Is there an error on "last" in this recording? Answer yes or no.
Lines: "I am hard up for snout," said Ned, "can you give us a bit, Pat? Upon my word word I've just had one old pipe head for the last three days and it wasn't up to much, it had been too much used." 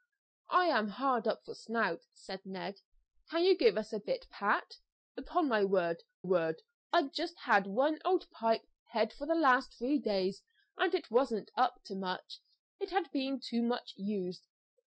no